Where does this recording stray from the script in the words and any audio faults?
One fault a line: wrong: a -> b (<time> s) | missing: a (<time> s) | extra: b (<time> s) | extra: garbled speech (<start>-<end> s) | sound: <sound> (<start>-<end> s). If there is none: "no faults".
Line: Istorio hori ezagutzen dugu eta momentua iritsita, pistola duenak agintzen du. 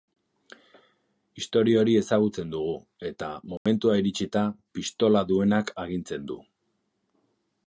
sound: dropout (3.6-3.7 s)